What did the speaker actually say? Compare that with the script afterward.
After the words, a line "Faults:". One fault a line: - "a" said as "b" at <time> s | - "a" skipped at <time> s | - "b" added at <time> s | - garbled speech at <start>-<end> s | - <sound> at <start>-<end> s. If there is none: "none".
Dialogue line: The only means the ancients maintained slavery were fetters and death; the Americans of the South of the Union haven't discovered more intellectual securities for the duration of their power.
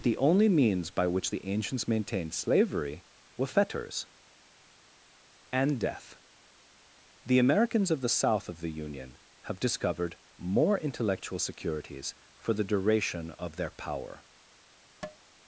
The only means by which the ancients maintained slavery were fetters and death; the Americans of the South of the Union have discovered more intellectual securities for the duration of their power.
Faults:
- "by which" added at 0.9 s
- "haven't" said as "have" at 9.4 s
- tap at 15.0-15.2 s